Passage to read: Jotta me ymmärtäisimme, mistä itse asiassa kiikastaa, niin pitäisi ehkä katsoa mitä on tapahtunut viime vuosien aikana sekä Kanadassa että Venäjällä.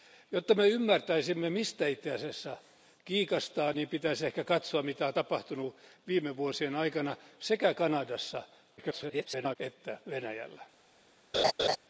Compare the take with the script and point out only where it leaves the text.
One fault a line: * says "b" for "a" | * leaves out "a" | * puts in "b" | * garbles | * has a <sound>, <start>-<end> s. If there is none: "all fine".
* garbles
* has a laugh, 11.3-11.8 s